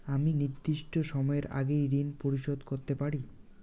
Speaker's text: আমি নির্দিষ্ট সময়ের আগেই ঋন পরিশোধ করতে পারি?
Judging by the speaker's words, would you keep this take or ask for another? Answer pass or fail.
pass